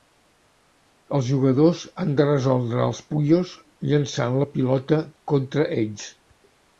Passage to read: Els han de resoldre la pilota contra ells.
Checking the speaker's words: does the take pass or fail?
fail